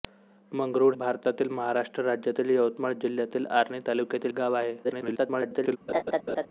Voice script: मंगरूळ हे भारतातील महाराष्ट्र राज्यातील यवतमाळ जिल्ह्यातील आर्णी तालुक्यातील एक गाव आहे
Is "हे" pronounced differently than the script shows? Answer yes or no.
yes